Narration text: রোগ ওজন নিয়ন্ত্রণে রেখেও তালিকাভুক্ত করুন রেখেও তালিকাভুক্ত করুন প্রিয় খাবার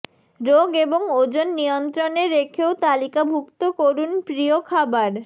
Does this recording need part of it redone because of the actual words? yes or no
yes